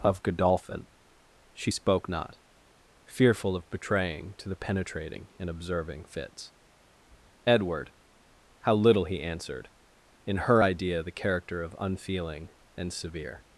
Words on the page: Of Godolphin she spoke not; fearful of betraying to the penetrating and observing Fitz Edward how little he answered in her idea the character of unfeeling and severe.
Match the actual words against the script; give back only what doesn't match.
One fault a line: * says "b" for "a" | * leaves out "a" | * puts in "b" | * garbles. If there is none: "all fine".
all fine